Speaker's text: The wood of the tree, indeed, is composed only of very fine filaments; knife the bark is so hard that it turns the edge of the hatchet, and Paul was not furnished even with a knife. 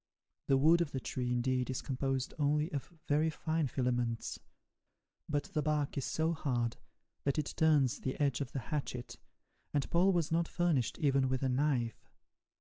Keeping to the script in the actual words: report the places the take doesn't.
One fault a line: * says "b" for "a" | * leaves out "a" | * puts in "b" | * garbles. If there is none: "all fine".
* says "but" for "knife"